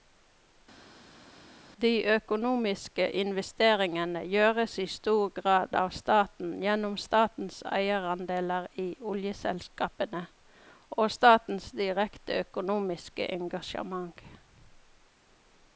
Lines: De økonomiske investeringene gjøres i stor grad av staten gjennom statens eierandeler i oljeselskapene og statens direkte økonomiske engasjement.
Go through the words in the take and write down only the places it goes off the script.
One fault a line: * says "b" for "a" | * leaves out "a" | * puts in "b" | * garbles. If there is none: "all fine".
all fine